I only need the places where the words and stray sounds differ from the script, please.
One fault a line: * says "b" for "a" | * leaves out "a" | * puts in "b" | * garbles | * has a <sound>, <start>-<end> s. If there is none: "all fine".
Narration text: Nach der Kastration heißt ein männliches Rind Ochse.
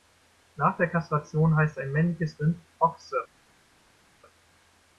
all fine